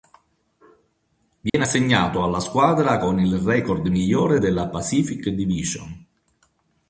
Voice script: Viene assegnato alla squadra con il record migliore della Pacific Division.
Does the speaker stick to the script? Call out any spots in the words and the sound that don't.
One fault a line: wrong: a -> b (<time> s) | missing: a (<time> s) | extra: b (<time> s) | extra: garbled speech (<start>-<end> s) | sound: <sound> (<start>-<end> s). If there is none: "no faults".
sound: dropout (1.5-1.5 s)